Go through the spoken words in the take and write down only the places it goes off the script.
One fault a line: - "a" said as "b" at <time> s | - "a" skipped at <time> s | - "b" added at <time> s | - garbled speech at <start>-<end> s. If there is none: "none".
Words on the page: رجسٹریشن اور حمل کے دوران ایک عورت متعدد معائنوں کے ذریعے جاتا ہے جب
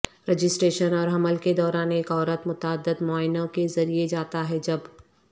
none